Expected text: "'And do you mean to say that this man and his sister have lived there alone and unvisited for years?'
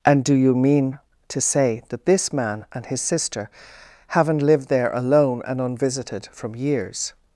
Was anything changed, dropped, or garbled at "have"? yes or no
yes